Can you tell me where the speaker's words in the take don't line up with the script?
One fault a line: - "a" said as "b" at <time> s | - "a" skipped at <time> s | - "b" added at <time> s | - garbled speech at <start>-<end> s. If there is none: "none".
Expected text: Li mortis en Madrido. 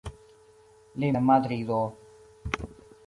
- "mortis" skipped at 1.1 s